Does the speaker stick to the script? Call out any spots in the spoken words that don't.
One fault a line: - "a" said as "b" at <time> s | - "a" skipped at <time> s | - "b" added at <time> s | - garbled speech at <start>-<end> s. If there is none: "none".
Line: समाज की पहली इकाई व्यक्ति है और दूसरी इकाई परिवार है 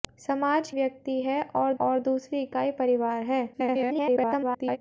- "की पहली इकाई" skipped at 0.7 s
- "और" added at 1.8 s
- garbled speech at 3.5-4.8 s